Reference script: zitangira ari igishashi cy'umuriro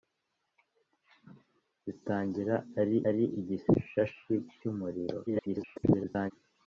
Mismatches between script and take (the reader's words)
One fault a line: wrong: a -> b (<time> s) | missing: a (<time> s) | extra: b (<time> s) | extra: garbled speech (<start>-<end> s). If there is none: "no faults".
extra: ari (3.1 s)
extra: garbled speech (5.3-6.3 s)